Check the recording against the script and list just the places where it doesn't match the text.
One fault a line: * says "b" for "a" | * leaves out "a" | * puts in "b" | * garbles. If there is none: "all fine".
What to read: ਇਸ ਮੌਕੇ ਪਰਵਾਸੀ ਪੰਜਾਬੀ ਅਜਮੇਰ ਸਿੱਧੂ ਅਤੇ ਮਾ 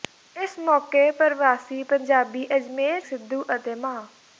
all fine